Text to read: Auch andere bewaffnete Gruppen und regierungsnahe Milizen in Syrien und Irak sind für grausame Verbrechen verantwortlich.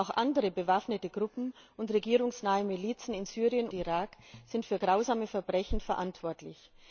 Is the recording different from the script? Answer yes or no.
yes